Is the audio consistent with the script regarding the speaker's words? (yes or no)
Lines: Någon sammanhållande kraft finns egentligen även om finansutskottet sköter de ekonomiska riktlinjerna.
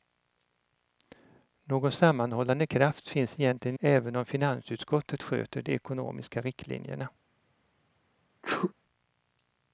yes